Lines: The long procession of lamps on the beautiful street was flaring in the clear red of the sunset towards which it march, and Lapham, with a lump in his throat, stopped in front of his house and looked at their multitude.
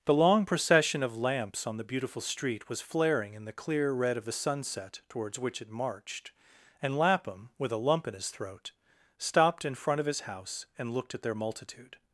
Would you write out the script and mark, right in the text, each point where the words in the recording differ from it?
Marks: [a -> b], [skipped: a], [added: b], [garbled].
The long procession of lamps on the beautiful street was flaring in the clear red of the sunset towards which it [march, -> marched] and Lapham, with a lump in his throat, stopped in front of his house and looked at their multitude.